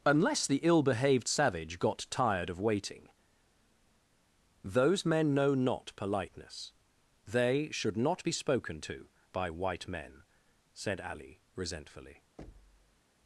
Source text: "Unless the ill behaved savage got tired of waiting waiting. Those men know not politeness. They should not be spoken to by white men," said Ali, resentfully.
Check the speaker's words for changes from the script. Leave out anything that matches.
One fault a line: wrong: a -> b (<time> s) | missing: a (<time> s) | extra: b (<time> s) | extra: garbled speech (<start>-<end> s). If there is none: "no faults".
missing: waiting (3.1 s)